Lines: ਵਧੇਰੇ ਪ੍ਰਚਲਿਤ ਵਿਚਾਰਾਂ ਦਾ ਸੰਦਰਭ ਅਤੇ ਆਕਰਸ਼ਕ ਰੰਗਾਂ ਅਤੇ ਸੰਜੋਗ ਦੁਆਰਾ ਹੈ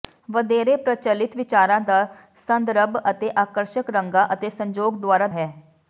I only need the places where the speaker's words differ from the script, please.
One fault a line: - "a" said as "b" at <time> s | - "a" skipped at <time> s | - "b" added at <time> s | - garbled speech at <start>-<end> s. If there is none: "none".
none